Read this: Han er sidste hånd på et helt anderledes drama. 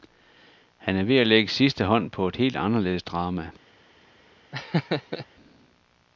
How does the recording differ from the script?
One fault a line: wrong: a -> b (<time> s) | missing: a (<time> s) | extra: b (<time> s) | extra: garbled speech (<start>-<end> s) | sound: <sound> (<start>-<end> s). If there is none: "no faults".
extra: ved at lægge (1.0 s)
sound: laugh (4.5-5.3 s)